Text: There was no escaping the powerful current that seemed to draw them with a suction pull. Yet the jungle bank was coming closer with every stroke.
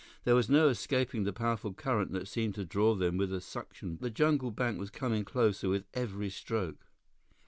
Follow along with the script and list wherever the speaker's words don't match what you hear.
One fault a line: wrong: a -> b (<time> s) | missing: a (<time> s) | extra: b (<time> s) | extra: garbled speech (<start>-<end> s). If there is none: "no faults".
missing: pull Yet (4.0 s)